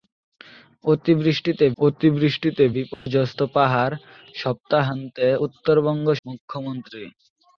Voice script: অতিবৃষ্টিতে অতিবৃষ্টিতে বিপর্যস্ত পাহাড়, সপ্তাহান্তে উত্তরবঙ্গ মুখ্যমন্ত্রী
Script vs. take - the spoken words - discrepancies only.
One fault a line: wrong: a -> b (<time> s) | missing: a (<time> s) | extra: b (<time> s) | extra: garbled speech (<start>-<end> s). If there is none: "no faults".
no faults